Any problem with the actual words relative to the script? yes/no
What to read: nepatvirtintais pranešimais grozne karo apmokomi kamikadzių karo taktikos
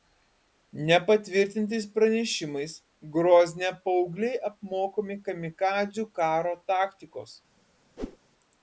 yes